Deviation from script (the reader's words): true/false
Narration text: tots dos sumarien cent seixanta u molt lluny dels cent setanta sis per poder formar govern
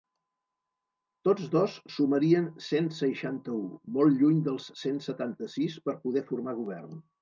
false